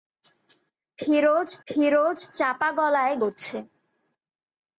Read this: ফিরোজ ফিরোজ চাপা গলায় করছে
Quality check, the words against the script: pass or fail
pass